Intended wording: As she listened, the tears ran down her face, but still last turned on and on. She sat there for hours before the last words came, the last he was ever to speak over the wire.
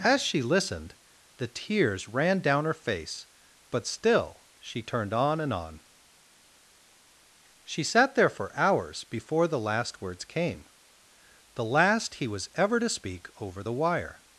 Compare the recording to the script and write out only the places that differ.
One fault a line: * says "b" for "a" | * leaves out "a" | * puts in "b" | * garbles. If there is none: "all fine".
* says "she" for "last"